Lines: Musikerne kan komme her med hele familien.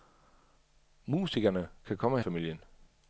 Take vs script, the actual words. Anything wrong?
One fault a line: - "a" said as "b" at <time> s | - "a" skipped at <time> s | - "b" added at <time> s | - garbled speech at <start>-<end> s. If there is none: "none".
- "her med hele" skipped at 2.2 s